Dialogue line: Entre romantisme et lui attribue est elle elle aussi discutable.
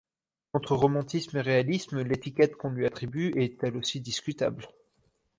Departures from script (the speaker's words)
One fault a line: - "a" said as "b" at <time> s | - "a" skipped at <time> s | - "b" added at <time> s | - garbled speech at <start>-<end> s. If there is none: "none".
- "réalisme l'étiquette qu'on" added at 1.4 s
- "elle" skipped at 3.8 s